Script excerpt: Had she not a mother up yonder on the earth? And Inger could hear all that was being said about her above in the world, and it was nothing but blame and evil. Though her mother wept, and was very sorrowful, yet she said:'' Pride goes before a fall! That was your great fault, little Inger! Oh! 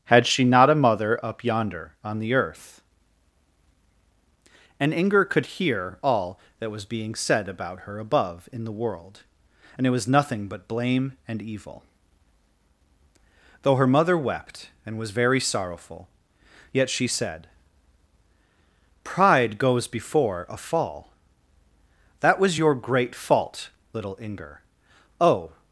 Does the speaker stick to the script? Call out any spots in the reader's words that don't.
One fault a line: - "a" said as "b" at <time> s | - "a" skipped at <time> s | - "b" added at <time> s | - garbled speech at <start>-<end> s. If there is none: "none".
none